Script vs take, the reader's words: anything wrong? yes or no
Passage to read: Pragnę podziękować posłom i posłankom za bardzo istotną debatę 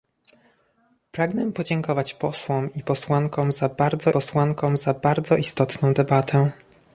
yes